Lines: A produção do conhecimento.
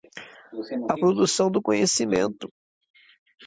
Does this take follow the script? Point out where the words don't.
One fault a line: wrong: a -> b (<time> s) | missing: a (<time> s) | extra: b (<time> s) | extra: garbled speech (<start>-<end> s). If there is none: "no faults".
no faults